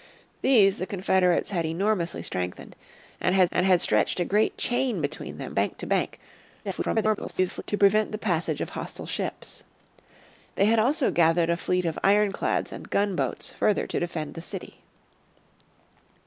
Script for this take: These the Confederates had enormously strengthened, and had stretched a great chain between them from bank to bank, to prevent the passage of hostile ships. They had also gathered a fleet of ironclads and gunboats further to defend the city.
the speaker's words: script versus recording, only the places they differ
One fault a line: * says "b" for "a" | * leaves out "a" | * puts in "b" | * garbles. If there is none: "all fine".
* puts in "and had"
* leaves out "from"
* garbles